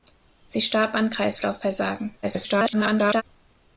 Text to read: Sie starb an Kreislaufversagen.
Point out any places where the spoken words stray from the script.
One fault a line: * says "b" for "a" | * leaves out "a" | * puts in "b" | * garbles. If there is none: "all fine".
* garbles